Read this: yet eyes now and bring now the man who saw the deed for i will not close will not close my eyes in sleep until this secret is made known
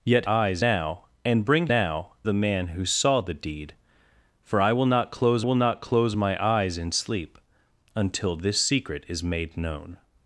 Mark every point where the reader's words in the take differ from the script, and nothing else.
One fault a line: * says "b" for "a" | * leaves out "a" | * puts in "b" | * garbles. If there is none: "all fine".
all fine